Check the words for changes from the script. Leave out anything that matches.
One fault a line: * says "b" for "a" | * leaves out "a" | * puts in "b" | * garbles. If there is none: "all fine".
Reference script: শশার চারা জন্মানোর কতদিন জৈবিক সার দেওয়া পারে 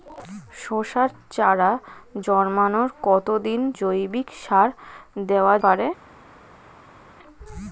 all fine